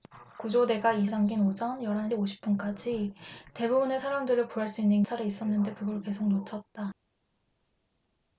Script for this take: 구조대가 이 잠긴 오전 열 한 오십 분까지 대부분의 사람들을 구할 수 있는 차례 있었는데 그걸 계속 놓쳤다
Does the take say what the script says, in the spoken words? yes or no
yes